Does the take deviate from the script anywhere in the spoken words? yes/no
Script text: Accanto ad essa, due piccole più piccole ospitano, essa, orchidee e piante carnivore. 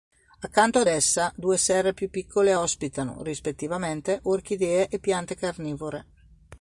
yes